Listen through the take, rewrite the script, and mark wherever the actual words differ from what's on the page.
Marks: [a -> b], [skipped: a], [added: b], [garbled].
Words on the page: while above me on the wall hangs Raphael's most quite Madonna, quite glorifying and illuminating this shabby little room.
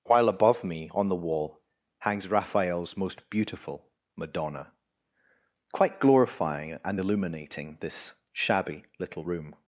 while above me on the wall hangs Raphael's most [quite -> beautiful] Madonna, quite glorifying and illuminating this shabby little room.